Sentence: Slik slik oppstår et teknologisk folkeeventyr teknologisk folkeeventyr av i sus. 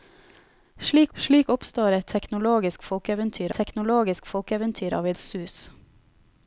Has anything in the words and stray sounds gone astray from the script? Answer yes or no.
no